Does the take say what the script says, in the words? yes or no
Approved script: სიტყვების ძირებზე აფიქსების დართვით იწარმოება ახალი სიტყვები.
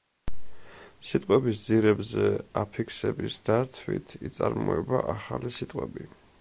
yes